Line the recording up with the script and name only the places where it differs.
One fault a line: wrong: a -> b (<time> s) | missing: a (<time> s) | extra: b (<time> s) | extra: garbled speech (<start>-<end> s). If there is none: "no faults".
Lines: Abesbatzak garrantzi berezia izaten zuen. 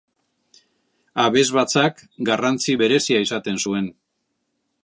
no faults